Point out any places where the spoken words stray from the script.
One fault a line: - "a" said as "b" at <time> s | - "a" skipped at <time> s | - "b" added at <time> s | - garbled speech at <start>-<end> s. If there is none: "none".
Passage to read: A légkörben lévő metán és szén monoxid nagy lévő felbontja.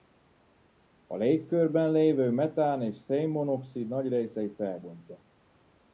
- "lévő" said as "részét" at 4.1 s